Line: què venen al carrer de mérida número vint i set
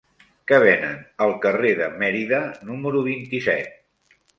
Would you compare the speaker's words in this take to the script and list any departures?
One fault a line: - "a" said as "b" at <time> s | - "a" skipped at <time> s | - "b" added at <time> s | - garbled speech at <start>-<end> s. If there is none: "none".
none